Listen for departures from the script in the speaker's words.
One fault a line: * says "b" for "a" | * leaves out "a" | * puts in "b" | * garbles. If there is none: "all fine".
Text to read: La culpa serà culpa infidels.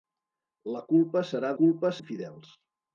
all fine